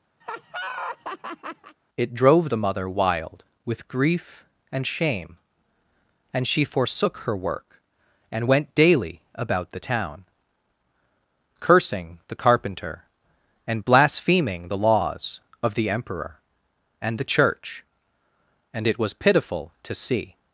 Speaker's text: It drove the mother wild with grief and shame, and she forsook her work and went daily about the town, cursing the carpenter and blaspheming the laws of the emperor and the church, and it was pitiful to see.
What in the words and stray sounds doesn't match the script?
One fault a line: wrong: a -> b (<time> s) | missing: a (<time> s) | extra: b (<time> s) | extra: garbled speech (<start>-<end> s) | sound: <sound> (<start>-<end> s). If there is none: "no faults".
sound: laugh (0.2-1.8 s)